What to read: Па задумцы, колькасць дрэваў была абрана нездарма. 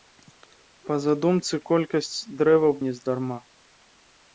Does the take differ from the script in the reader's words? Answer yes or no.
yes